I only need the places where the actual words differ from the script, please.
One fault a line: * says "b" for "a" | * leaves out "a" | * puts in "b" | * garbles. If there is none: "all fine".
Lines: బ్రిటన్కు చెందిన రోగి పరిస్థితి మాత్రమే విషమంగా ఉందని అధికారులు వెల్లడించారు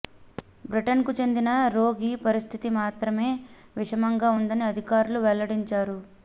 all fine